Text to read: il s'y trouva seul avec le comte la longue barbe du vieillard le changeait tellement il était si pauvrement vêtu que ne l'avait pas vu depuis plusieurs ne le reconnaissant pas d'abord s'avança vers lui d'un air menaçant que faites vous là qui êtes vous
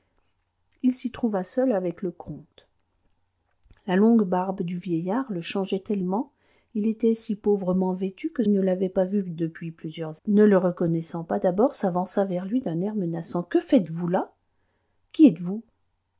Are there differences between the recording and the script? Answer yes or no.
no